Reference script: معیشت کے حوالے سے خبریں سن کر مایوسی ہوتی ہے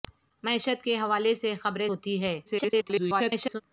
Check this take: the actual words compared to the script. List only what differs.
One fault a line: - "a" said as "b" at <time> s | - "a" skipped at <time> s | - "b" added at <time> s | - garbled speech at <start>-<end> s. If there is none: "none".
- "سن کر مایوسی" skipped at 1.9 s
- garbled speech at 2.4-3.6 s